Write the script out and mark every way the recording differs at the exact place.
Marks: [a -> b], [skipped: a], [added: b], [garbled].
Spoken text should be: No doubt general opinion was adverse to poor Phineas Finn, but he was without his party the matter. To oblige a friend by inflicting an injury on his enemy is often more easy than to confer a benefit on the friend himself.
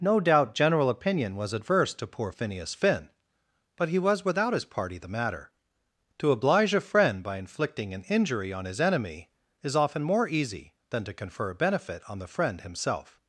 No doubt general opinion was adverse to poor Phineas Finn, but he was without his party the matter. To oblige a friend by inflicting an injury on his enemy is often more easy than to confer a benefit on the friend himself.